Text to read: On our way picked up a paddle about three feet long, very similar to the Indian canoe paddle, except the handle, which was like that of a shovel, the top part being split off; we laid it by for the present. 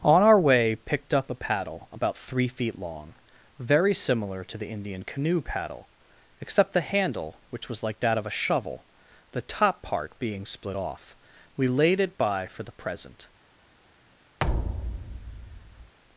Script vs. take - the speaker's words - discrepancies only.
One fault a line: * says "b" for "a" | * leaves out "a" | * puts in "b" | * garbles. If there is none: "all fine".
all fine